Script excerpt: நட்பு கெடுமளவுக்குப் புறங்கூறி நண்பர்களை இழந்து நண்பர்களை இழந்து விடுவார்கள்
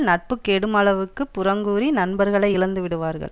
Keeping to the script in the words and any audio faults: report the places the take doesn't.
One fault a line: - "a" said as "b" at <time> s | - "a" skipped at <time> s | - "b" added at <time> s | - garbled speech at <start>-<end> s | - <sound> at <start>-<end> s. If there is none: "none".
- "நண்பர்களை இழந்து" skipped at 2.8 s